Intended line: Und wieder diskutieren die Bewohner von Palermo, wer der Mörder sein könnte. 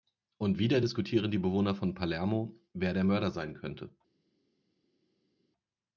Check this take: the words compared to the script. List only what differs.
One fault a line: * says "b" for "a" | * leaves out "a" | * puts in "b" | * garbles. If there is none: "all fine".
all fine